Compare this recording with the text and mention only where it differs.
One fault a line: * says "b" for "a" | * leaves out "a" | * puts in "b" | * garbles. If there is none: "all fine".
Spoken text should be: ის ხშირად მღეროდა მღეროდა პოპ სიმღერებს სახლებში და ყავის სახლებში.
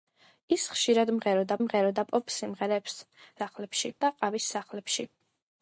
all fine